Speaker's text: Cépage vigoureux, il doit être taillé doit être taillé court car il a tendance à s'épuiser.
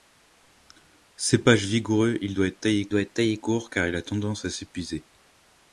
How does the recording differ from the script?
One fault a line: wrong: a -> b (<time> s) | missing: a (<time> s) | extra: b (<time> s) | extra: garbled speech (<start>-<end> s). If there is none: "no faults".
no faults